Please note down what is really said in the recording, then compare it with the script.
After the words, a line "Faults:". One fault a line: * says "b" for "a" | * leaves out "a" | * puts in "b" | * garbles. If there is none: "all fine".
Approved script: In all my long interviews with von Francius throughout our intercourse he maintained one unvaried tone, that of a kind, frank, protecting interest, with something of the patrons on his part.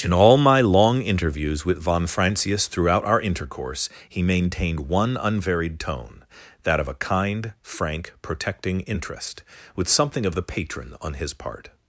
In all my long interviews with von Francius throughout our intercourse he maintained one unvaried tone, that of a kind, frank, protecting interest, with something of the patron on his part.
Faults:
* says "patron" for "patrons"